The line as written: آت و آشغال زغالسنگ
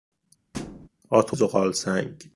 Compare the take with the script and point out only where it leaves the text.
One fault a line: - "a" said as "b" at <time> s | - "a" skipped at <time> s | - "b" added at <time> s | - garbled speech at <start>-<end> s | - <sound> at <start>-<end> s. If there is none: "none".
- thud at 0.5-0.9 s
- "آشغال" skipped at 1.4 s